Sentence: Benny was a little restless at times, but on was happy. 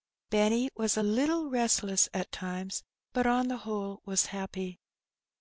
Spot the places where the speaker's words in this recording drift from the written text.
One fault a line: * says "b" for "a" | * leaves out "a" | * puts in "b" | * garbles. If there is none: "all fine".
* puts in "the whole"